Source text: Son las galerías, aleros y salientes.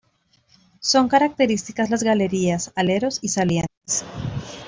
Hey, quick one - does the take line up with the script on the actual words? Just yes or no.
no